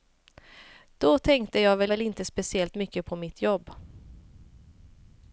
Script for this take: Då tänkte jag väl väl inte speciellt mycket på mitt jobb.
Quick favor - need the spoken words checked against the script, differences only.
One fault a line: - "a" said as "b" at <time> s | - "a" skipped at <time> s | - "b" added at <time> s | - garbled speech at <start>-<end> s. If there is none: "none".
none